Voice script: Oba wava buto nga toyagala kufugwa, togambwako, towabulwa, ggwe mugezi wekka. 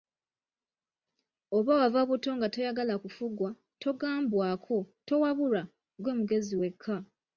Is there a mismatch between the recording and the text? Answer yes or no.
no